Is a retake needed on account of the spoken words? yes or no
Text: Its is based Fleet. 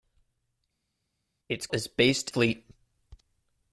no